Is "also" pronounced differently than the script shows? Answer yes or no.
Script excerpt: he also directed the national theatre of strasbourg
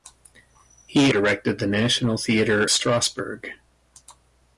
yes